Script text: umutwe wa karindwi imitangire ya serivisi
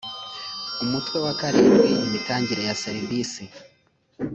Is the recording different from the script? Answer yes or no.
no